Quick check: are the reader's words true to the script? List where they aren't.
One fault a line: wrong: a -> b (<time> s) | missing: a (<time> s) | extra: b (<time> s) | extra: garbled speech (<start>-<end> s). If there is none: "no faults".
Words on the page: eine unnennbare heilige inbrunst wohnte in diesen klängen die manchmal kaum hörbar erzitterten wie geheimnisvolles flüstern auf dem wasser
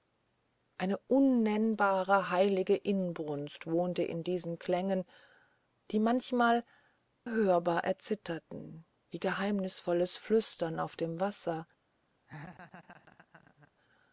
missing: kaum (6.6 s)